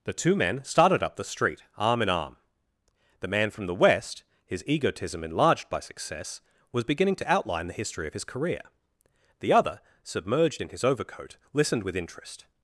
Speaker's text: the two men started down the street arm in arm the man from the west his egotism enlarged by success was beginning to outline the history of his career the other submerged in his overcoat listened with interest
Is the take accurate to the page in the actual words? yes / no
no